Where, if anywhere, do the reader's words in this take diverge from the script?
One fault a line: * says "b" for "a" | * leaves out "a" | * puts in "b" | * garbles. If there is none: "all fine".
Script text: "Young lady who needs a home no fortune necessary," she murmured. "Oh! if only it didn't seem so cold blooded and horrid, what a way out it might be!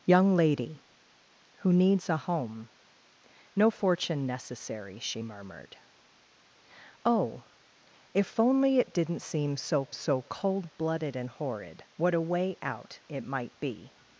* puts in "so"